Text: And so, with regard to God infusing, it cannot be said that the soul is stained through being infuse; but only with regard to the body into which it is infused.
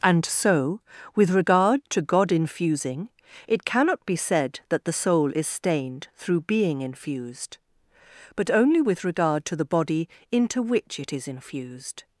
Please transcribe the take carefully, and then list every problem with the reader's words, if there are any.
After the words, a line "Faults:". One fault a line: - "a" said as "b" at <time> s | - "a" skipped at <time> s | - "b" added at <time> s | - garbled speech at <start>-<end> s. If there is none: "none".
And so, with regard to God infusing, it cannot be said that the soul is stained through being infused; but only with regard to the body into which it is infused.
Faults:
- "infuse" said as "infused" at 6.8 s